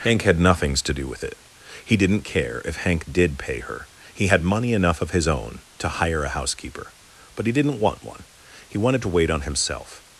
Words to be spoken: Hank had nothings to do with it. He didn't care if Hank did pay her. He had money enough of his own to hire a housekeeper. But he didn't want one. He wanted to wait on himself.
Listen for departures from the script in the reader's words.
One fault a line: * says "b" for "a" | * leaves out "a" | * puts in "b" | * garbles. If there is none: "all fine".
all fine